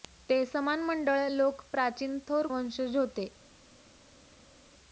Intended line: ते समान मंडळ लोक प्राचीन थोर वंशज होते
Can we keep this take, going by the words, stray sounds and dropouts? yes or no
yes